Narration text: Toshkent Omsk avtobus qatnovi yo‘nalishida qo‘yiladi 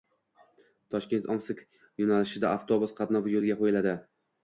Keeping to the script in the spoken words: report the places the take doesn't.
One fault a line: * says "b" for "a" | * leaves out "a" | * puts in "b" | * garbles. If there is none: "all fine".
* puts in "yo‘nalishida"
* says "yo‘lga" for "yo‘nalishida"